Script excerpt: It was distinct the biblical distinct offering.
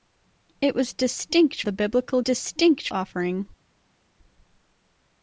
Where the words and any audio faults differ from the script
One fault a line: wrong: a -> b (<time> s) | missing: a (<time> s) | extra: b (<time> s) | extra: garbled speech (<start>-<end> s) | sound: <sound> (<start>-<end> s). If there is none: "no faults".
no faults